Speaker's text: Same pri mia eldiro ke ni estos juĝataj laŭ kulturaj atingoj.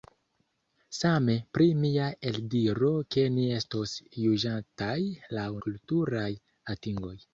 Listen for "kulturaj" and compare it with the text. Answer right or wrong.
right